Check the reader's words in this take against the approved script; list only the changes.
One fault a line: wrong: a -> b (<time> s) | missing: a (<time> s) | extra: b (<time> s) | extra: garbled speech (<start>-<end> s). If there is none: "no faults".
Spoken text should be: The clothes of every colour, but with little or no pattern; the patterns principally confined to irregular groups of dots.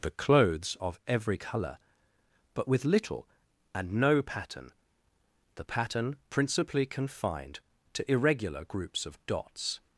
wrong: or -> and (3.8 s)
wrong: patterns -> pattern (5.6 s)